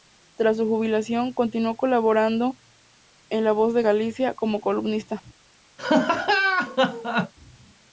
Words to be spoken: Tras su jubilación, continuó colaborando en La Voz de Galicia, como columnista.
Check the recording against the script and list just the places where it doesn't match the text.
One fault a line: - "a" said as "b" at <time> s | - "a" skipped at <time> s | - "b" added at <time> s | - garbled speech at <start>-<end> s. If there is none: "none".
none